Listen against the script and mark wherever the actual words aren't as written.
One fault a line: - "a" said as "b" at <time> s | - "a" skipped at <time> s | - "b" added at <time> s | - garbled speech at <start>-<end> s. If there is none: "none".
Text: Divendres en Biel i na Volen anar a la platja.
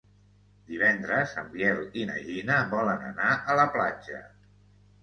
- "Gina" added at 2.3 s